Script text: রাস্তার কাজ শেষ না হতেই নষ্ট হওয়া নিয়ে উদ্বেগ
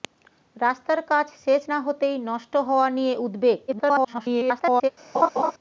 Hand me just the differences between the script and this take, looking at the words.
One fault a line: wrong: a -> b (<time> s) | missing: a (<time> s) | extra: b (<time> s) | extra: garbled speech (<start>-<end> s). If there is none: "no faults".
extra: garbled speech (3.7-4.9 s)